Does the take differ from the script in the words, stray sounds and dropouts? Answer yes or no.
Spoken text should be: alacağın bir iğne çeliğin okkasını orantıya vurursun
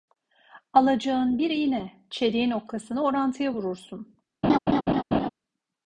yes